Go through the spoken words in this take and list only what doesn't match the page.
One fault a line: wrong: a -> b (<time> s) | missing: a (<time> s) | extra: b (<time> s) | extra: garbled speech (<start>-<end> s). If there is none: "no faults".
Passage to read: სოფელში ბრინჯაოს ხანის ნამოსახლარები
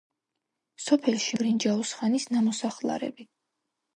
no faults